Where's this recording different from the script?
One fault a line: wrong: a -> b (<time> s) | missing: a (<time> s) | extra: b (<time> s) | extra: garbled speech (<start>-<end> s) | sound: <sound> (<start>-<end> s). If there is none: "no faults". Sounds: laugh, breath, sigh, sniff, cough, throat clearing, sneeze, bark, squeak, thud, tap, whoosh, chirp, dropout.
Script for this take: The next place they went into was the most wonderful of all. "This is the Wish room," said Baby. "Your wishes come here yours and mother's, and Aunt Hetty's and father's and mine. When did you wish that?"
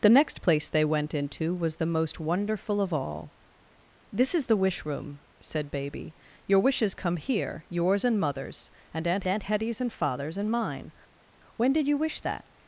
extra: Aunt (9.3 s)